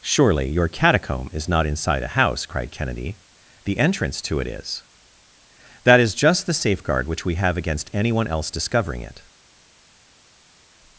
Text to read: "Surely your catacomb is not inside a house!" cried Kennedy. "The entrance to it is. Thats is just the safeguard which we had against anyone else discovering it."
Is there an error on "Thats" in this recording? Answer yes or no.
yes